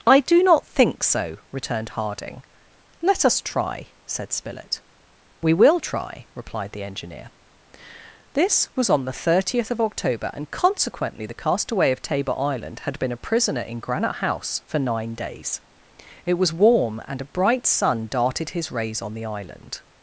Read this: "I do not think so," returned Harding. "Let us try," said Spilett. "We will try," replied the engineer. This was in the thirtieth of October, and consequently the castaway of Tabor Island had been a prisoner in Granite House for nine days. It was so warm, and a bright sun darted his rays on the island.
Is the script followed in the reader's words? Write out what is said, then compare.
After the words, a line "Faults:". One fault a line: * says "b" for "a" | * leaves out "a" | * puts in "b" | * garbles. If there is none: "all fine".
"I do not think so," returned Harding. "Let us try," said Spilett. "We will try," replied the engineer. This was on the thirtieth of October, and consequently the castaway of Tabor Island had been a prisoner in Granite House for nine days. It was warm, and a bright sun darted his rays on the island.
Faults:
* says "on" for "in"
* leaves out "so"